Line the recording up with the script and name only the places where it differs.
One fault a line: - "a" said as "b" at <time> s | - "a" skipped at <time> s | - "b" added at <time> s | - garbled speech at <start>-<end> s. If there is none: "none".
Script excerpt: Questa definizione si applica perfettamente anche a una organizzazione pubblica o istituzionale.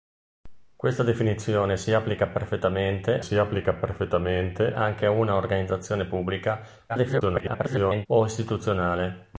- "si applica perfettamente" added at 3.2 s
- garbled speech at 6.9-8.1 s